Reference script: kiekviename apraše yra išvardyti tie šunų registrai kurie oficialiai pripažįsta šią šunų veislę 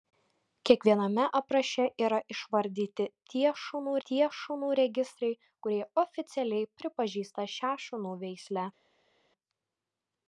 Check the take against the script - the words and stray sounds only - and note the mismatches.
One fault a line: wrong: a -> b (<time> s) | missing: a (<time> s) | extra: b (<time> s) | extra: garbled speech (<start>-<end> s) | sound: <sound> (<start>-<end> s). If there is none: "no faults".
extra: tie šunų (4.1 s)